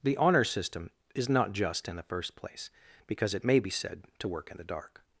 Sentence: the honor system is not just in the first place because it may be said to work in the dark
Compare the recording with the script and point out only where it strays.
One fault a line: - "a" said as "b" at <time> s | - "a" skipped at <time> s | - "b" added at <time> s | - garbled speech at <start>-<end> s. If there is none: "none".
none